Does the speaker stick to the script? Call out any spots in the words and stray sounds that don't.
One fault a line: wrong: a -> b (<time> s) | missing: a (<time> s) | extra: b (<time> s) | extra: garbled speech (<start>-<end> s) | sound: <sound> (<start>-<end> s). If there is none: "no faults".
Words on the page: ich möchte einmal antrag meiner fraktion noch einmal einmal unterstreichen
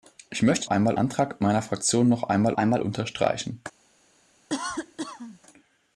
sound: cough (4.5-5.4 s)